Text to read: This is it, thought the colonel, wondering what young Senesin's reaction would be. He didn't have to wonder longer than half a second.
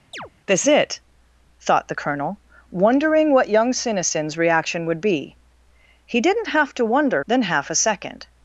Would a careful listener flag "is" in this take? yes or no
yes